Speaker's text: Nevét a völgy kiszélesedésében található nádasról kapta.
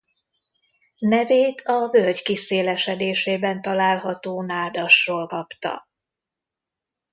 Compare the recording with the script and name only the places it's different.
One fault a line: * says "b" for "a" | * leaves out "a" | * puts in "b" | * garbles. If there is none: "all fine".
all fine